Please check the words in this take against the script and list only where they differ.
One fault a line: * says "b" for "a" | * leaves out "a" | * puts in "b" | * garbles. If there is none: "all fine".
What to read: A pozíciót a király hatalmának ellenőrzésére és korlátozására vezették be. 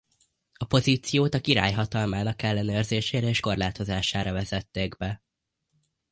all fine